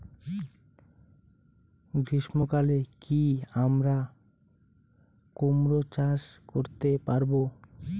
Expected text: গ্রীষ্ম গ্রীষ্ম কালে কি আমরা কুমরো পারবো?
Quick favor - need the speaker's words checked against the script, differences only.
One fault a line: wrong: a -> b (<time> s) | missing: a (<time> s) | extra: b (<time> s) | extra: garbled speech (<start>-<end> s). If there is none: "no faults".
missing: গ্রীষ্ম (2.4 s)
extra: চাষ করতে (5.9 s)